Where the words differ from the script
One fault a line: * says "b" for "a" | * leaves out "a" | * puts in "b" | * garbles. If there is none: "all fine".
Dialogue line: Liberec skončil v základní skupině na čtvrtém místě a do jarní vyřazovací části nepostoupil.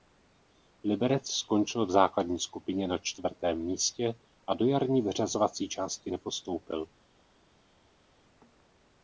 all fine